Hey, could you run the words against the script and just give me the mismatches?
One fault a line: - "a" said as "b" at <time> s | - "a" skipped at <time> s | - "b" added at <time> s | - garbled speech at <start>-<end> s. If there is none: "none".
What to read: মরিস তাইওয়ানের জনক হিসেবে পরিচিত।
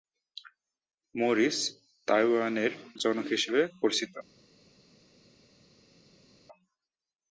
none